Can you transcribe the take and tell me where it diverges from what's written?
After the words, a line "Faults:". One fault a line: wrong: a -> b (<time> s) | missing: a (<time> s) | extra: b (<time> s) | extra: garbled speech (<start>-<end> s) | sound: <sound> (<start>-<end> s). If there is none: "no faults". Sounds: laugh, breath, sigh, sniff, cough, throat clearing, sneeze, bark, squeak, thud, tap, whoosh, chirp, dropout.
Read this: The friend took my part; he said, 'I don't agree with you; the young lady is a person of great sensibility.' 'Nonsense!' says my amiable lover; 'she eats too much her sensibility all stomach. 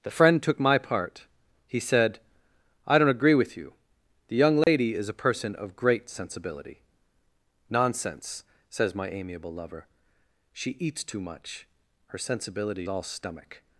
The friend took my part; he said, 'I don't agree with you; the young lady is a person of great sensibility.' 'Nonsense!' says my amiable lover; 'she eats too much her sensibility all stomach.
Faults:
sound: dropout (4.6-4.7 s)